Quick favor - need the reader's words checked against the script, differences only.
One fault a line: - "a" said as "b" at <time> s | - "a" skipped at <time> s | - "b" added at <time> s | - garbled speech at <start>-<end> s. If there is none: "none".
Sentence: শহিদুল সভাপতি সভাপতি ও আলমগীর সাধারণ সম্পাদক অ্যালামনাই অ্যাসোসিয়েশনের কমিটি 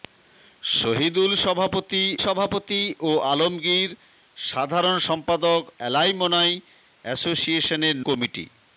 none